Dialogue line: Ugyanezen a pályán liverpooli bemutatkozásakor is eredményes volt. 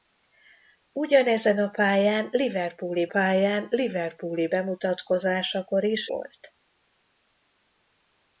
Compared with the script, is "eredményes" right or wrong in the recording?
wrong